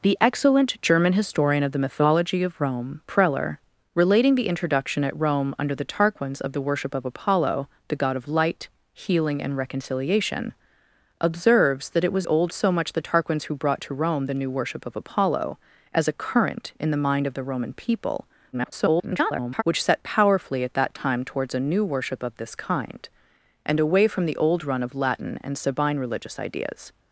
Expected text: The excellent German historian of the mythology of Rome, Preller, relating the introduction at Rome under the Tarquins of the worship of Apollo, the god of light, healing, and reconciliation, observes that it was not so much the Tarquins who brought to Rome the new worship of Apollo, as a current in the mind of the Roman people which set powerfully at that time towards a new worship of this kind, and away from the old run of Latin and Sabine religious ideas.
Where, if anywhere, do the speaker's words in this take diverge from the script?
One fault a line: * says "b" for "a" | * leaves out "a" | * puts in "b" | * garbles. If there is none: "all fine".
* says "old" for "not"
* garbles